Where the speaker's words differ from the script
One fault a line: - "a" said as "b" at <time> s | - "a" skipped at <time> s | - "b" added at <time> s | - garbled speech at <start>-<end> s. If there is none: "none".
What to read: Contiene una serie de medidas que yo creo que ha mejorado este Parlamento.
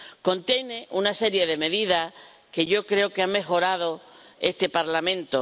none